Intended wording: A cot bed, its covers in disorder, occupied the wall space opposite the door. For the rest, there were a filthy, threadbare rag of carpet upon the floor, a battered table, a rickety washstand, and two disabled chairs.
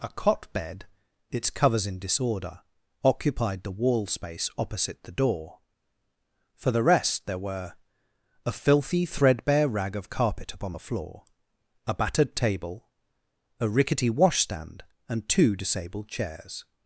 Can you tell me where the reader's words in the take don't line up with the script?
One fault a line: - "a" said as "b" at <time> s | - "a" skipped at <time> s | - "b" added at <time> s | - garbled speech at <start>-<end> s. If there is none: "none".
none